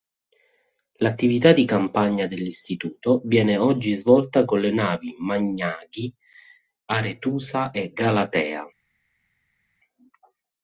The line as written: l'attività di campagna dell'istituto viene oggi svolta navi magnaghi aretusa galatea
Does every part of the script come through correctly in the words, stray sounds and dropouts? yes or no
no